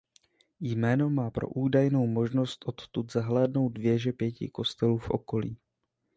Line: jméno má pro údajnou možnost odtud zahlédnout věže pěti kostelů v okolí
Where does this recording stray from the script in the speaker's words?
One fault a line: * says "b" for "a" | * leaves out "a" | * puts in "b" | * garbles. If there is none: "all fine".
all fine